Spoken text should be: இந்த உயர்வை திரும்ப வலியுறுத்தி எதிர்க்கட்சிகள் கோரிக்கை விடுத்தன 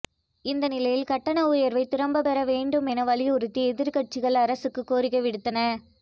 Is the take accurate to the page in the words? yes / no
no